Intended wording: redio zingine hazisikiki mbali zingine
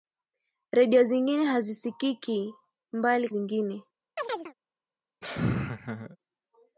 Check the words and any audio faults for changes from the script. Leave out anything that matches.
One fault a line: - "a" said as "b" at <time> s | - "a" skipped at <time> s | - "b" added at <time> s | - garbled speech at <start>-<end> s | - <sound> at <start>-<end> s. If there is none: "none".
- chirp at 4.2-4.5 s
- laugh at 5.2-6.2 s